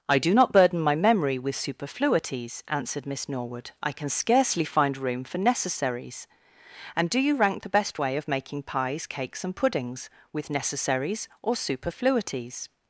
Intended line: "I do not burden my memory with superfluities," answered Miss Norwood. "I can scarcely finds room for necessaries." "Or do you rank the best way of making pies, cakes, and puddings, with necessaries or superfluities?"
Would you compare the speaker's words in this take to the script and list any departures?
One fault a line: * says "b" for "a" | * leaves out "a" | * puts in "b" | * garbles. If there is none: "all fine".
* says "find" for "finds"
* says "And" for "Or"